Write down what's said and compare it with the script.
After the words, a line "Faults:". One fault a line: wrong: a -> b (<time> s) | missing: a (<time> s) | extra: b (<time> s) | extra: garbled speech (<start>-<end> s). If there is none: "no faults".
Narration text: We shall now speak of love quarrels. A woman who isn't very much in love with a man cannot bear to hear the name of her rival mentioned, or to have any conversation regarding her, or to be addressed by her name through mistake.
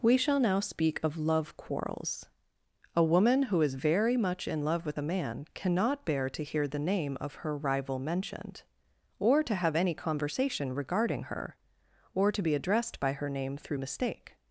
We shall now speak of love quarrels. A woman who is very much in love with a man cannot bear to hear the name of her rival mentioned, or to have any conversation regarding her, or to be addressed by her name through mistake.
Faults:
wrong: isn't -> is (3.6 s)